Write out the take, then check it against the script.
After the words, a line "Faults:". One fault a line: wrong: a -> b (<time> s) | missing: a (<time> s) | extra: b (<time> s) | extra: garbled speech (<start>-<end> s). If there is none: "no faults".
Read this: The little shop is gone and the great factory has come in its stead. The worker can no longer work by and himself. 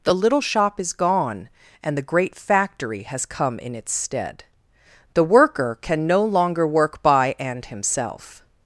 The little shop is gone and the great factory has come in its stead. The worker can no longer work by and himself.
Faults:
no faults